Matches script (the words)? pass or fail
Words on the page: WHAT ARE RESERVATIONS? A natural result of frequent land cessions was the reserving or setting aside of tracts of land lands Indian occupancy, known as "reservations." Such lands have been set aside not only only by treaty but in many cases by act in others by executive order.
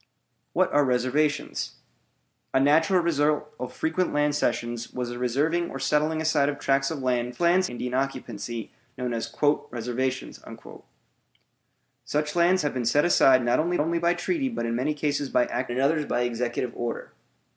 pass